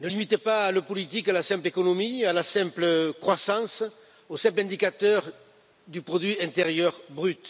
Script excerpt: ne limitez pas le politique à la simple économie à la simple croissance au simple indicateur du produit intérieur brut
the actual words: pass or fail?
pass